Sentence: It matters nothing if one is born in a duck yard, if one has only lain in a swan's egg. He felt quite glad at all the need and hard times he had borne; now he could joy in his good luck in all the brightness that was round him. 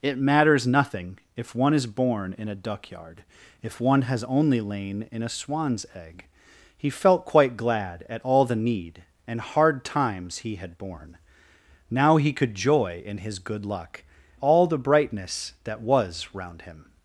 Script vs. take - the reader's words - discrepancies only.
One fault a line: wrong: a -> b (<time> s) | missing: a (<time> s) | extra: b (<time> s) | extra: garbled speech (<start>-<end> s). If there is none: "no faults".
missing: in (14.0 s)